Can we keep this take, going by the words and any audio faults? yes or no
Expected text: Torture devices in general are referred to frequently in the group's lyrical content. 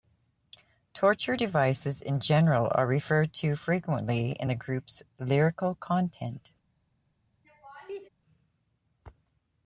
no